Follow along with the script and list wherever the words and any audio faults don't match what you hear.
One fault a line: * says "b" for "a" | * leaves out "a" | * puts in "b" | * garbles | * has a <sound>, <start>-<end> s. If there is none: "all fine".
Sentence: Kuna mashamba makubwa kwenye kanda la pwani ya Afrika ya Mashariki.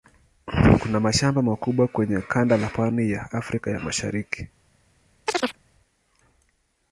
* has a chirp, 5.3-5.6 s